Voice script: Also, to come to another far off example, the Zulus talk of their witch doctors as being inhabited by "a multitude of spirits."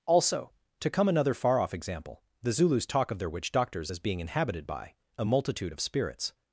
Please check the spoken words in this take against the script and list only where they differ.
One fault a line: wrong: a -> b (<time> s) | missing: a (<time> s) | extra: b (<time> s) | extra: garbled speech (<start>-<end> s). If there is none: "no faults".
missing: to (1.1 s)